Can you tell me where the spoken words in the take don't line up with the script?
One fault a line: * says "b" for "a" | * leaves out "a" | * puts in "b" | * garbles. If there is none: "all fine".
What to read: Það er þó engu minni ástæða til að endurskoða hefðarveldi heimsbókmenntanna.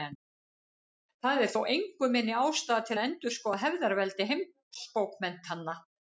all fine